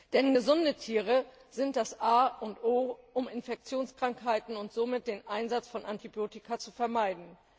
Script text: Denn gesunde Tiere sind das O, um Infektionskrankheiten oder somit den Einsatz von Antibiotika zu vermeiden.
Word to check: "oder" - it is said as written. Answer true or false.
false